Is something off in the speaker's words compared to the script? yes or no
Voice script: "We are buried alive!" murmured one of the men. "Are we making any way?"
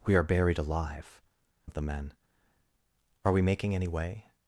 yes